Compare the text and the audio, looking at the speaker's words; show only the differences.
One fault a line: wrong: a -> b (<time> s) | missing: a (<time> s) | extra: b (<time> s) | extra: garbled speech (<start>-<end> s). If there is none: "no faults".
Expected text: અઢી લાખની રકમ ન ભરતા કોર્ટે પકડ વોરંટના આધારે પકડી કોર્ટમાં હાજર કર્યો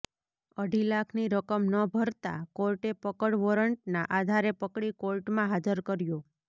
no faults